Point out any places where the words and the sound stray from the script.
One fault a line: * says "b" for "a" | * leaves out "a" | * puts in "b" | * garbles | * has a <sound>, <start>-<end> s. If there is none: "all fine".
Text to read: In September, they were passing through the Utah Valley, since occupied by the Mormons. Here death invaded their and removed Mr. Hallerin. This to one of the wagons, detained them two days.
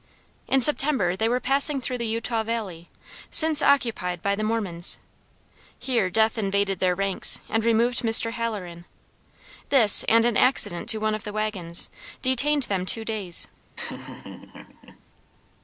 * puts in "ranks"
* puts in "and an accident"
* has a laugh, 13.8-15.0 s